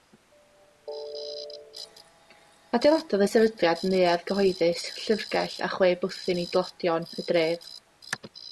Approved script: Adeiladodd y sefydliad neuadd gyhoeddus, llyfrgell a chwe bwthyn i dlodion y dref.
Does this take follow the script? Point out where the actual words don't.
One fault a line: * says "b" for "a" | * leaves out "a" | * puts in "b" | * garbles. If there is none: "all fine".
all fine